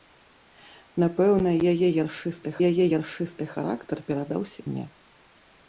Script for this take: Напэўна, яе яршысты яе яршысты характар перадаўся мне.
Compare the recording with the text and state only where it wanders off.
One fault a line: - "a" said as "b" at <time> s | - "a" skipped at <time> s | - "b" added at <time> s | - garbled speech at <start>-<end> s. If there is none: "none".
none